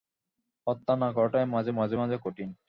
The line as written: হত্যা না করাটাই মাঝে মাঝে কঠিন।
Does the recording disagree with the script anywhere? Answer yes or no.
yes